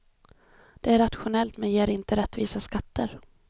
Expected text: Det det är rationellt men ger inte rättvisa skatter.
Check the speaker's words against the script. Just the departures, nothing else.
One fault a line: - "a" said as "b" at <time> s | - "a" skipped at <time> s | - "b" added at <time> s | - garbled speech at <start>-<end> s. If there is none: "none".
- "det" skipped at 0.9 s